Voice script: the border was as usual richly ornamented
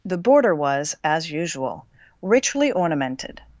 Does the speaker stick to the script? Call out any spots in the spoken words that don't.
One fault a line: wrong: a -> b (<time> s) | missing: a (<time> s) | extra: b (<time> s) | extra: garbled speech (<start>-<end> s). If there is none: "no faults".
no faults